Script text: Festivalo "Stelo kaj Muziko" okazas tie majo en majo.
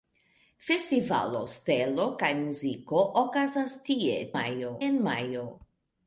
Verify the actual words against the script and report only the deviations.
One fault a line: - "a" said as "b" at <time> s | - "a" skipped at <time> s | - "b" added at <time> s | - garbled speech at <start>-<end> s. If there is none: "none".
none